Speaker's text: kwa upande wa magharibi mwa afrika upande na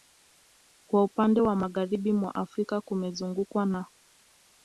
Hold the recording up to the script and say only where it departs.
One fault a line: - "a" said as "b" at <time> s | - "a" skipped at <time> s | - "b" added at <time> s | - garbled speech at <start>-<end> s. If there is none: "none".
- "upande" said as "kumezungukwa" at 2.8 s